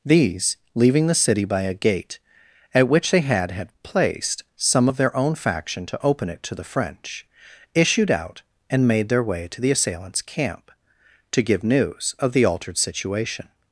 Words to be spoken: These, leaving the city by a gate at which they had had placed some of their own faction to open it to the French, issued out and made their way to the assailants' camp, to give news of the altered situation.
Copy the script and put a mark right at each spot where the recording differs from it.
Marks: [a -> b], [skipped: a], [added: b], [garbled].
These, leaving the city by a gate at which they had had placed some of their own faction to open it to the French, issued out and made their way to the assailants' camp, to give news of the altered situation.